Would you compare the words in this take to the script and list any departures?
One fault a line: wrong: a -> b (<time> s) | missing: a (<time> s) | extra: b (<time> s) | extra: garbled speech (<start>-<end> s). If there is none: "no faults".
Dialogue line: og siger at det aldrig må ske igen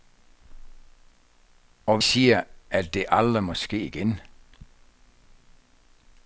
no faults